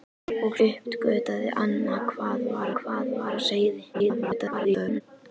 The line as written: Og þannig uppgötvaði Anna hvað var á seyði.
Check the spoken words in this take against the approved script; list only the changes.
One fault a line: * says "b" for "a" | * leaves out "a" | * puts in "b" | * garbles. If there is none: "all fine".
* leaves out "þannig"
* puts in "hvað var"
* garbles